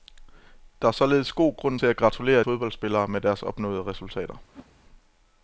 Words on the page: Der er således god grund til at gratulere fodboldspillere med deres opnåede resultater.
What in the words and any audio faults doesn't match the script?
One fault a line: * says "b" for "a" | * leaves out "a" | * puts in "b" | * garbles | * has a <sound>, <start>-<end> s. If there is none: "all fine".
* has a whoosh, 4.5-4.8 s